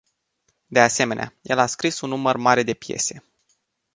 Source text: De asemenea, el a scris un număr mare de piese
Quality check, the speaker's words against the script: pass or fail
pass